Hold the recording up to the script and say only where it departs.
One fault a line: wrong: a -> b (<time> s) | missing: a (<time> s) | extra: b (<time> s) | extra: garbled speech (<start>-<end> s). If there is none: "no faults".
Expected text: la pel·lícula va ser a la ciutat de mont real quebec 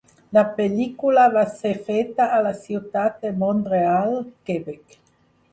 extra: feta (1.9 s)